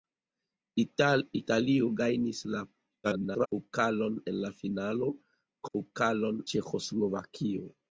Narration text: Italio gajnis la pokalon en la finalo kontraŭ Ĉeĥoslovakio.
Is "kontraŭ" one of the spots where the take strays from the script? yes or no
yes